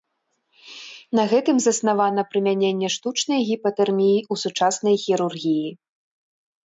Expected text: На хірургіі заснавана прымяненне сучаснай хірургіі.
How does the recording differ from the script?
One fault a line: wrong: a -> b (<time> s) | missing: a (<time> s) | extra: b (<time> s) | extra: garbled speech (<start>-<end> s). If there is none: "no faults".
wrong: хірургіі -> гэтым (1.3 s)
extra: штучнай гіпатэрміі ў (3.0 s)